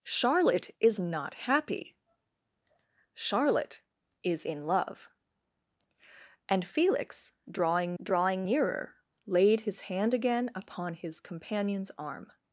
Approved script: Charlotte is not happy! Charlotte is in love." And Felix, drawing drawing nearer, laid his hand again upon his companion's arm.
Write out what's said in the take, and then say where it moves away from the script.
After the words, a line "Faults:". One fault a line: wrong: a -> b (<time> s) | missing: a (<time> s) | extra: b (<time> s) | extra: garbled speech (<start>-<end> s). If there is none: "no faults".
Charlotte is not happy! Charlotte is in love." And Felix, drawing drawing nearer, laid his hand again upon his companion's arm.
Faults:
no faults